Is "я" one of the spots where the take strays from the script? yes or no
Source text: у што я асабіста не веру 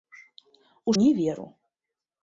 yes